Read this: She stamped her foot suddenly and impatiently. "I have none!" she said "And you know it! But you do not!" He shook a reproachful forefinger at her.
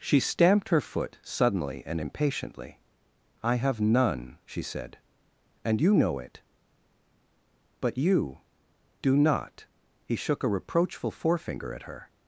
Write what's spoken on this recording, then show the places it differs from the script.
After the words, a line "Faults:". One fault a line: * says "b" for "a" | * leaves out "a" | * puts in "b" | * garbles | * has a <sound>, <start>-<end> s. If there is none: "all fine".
She stamped her foot suddenly and impatiently. "I have none!" she said "And you know it! But you do not!" He shook a reproachful forefinger at her.
Faults:
all fine